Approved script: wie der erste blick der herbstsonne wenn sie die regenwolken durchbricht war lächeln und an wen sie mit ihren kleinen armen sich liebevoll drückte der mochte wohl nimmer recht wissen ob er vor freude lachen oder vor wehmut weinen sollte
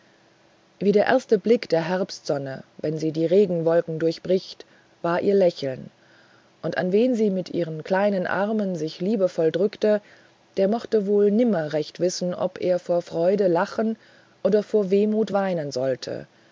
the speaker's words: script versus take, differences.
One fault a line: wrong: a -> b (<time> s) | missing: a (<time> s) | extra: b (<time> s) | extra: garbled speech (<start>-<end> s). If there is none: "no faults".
extra: ihr (5.2 s)